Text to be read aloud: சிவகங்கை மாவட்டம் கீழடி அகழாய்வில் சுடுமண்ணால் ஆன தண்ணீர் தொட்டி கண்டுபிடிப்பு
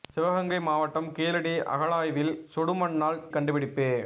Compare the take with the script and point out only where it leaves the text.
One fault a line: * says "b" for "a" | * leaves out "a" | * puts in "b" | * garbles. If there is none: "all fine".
* leaves out "ஆன தண்ணீர் தொட்டி"